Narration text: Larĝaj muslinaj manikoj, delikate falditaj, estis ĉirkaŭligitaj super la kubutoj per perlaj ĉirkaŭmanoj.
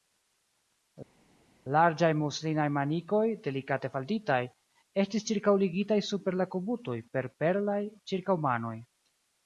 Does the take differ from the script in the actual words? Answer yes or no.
no